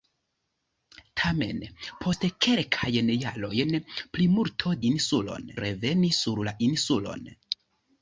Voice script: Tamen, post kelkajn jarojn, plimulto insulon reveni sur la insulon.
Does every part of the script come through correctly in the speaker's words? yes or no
yes